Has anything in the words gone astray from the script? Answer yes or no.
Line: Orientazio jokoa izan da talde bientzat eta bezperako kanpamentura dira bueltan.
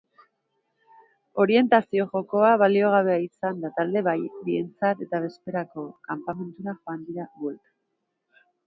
yes